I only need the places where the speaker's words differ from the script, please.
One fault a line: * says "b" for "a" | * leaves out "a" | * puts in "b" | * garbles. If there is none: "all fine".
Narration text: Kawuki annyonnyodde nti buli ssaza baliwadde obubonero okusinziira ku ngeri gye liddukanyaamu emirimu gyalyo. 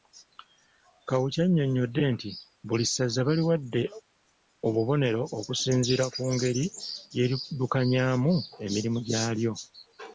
all fine